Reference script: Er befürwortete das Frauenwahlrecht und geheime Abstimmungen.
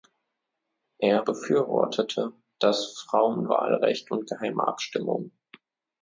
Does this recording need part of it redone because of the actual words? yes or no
no